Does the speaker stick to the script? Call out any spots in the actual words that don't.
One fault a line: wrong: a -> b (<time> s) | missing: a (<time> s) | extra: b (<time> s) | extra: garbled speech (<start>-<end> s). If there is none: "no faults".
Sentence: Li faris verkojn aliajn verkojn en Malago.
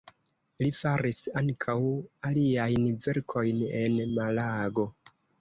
wrong: verkojn -> ankaŭ (1.4 s)